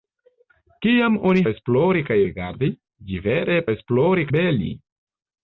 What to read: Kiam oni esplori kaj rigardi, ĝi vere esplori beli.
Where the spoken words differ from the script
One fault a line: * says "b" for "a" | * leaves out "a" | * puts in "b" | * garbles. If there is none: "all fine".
all fine